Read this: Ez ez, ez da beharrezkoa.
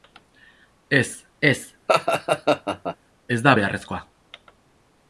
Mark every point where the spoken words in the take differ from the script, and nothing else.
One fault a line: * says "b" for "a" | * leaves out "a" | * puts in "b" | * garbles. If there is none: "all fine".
all fine